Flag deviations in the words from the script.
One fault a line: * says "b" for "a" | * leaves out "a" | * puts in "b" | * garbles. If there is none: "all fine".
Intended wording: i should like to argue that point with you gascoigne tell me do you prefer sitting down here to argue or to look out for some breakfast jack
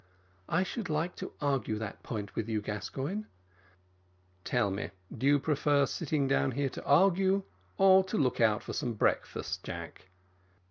all fine